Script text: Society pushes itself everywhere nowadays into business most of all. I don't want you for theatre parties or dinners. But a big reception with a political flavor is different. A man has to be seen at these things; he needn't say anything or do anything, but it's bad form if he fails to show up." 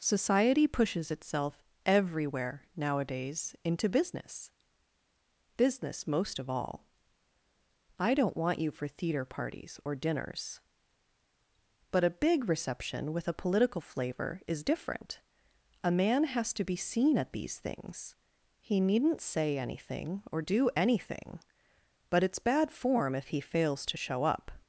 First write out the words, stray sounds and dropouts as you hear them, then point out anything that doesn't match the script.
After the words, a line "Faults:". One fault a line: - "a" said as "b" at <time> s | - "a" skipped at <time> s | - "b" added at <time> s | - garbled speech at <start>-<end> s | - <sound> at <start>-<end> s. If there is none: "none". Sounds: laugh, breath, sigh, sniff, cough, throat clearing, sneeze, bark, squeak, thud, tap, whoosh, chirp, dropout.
Society pushes itself everywhere nowadays into business business most of all. I don't want you for theatre parties or dinners. But a big reception with a political flavor is different. A man has to be seen at these things; he needn't say anything or do anything, but it's bad form if he fails to show up."
Faults:
- "business" added at 5.6 s